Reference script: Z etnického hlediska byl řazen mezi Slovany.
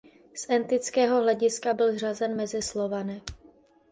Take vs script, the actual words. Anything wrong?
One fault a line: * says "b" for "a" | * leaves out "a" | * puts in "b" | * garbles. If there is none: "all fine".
all fine